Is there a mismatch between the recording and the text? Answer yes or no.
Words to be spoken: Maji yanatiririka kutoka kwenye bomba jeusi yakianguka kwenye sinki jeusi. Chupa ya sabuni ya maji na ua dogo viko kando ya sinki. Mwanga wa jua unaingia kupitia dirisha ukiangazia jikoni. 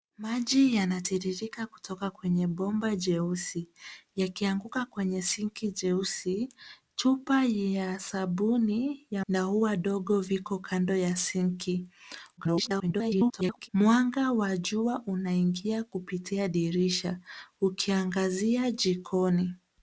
yes